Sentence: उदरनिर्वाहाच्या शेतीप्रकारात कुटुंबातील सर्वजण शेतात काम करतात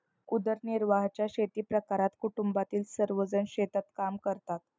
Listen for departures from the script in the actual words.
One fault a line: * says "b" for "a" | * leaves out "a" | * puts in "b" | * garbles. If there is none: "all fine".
all fine